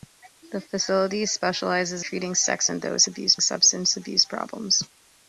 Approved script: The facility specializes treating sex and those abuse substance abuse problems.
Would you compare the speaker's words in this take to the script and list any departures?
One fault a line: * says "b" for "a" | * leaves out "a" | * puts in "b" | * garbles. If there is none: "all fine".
all fine